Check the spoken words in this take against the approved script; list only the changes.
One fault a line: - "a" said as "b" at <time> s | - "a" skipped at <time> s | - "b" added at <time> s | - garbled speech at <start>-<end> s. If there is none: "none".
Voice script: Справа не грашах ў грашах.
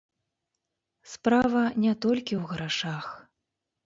- "грашах" said as "толькі" at 2.0 s